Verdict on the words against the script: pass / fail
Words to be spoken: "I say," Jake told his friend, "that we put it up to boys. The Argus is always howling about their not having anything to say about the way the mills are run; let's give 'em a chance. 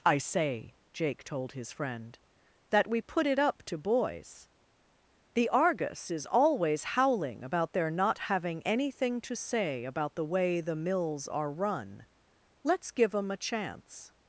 pass